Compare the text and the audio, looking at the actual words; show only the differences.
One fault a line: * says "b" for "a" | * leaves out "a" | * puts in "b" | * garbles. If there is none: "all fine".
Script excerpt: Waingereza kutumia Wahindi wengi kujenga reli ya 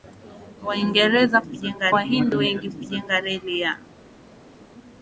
* says "kujenga" for "kutumia"